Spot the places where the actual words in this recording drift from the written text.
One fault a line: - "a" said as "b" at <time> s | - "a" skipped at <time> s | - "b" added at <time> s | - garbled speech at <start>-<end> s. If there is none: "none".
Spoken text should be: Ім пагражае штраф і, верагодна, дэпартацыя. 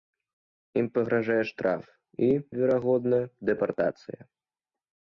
none